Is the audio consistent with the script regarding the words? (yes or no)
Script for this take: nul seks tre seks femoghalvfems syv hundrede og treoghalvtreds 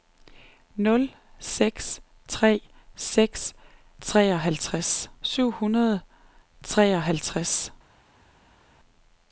no